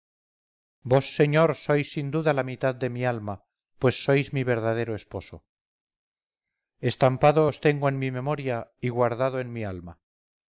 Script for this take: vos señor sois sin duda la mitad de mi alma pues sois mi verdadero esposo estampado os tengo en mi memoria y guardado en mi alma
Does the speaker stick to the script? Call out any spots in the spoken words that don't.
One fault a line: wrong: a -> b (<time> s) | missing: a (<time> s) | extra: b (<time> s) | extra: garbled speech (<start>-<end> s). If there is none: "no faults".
no faults